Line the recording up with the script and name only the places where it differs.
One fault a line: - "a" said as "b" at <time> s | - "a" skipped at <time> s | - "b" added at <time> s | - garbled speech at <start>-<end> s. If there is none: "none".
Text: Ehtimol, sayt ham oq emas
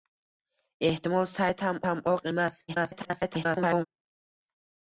- "ham" added at 1.9 s
- garbled speech at 2.7-3.9 s